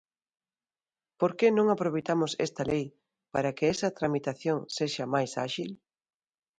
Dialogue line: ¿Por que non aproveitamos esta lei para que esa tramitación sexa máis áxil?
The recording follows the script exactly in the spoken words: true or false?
true